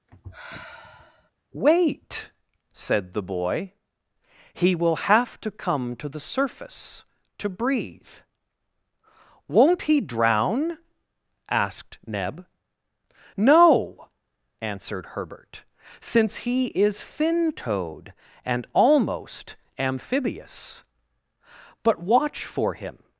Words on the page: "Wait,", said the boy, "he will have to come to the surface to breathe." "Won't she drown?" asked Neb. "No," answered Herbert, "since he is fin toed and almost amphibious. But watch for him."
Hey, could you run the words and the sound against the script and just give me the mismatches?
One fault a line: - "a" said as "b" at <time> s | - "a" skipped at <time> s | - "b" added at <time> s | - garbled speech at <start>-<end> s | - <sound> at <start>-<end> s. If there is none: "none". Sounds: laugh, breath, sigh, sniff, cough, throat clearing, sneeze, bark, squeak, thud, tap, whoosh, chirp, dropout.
- sigh at 0.1-1.3 s
- "she" said as "he" at 9.8 s